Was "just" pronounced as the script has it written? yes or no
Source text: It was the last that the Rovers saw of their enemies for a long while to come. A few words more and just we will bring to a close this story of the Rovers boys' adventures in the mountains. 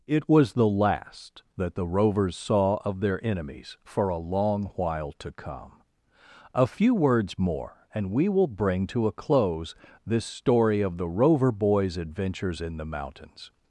no